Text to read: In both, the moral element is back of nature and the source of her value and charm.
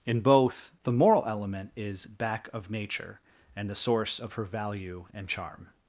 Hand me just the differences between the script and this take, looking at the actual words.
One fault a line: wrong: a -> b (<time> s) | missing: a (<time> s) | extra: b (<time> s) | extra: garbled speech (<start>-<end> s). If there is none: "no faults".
no faults